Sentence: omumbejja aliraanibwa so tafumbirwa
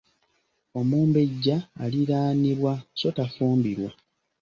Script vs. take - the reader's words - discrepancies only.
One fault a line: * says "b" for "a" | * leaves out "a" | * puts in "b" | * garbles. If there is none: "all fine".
all fine